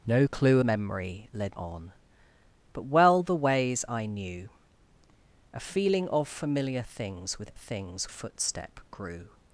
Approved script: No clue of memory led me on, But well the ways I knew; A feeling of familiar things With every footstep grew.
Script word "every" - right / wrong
wrong